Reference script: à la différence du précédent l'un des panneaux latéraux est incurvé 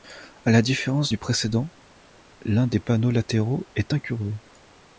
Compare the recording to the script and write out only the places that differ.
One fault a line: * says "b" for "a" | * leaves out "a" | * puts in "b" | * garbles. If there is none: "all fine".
all fine